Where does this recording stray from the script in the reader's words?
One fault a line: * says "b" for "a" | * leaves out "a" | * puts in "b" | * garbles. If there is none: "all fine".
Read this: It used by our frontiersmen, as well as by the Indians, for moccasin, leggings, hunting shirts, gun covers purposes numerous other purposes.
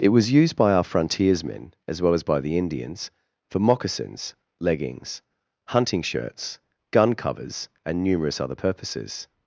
* puts in "was"
* says "moccasins" for "moccasin"
* says "and" for "purposes"